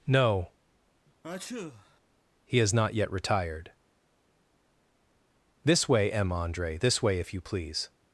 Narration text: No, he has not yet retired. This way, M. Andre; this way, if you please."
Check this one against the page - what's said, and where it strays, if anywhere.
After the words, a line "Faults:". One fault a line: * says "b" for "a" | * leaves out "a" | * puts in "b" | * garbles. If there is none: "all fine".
No, he has not yet retired. This way, M. Andre; this way, if you please."
Faults:
all fine